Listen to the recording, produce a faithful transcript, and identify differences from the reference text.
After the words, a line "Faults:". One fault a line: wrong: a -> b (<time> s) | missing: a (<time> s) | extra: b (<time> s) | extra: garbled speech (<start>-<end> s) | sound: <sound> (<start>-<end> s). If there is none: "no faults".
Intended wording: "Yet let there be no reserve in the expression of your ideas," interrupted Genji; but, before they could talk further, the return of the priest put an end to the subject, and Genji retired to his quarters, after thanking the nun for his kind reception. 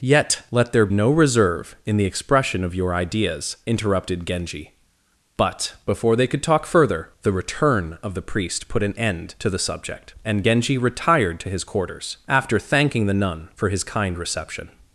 "Yet let there no reserve in the expression of your ideas," interrupted Genji; but, before they could talk further, the return of the priest put an end to the subject, and Genji retired to his quarters, after thanking the nun for his kind reception.
Faults:
missing: be (0.9 s)